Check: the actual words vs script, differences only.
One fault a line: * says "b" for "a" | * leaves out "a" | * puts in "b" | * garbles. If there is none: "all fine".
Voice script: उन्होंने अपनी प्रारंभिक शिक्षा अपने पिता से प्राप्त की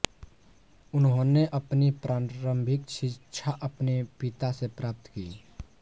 all fine